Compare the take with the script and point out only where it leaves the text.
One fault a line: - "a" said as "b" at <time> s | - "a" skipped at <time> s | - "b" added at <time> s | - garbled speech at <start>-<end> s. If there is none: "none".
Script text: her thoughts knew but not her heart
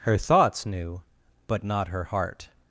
none